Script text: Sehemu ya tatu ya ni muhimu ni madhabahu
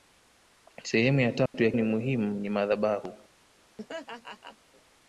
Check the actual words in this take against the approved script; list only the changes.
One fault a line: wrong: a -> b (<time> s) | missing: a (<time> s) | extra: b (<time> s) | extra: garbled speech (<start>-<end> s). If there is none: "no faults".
no faults